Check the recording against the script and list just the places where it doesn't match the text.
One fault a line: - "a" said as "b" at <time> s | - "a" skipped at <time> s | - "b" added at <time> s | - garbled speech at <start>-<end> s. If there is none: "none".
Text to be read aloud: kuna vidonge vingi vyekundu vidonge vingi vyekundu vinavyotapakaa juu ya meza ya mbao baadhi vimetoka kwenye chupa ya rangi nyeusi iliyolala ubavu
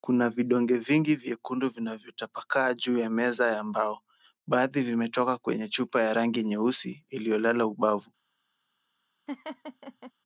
- "vidonge vingi vyekundu" skipped at 1.7 s